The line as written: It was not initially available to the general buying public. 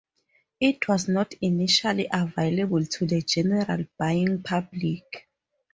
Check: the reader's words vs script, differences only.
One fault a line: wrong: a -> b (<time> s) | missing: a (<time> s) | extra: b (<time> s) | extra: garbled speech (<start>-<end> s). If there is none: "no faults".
no faults